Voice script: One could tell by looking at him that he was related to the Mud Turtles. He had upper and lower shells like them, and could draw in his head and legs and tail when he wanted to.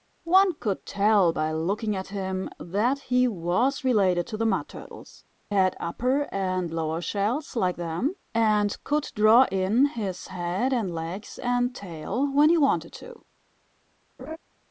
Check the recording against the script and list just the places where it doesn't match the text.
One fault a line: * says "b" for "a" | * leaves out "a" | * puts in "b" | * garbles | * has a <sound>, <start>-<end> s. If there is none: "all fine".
* leaves out "He"
* has a laugh, 14.2-14.4 s